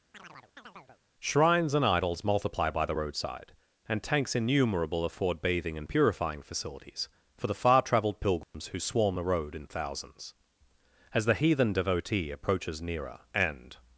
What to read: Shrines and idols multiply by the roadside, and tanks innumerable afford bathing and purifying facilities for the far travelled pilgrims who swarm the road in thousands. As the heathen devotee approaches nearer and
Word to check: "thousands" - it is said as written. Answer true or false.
true